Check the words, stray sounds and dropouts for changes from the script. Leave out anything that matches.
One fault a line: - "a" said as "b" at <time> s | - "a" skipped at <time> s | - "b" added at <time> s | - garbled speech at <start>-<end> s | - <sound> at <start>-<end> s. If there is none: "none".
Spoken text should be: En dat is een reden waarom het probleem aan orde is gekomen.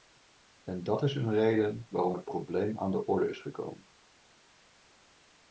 - "de" added at 2.9 s